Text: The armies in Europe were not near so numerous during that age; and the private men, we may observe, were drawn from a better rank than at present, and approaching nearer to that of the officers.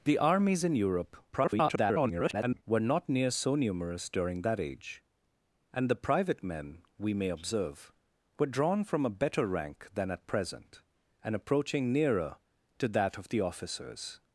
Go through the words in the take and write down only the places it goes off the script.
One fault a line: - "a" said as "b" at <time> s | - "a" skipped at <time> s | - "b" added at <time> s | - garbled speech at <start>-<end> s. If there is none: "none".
- garbled speech at 1.3-2.6 s